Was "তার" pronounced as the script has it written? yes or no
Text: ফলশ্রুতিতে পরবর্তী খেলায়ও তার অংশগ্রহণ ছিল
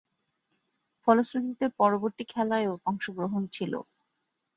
no